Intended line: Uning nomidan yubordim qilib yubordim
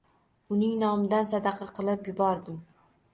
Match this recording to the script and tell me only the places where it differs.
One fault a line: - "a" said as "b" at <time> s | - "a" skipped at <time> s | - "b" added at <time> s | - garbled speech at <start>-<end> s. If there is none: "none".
- "yubordim" said as "sadaqa" at 1.3 s